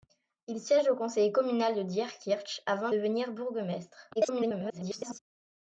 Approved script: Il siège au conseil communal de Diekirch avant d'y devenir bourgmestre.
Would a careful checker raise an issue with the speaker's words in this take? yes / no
yes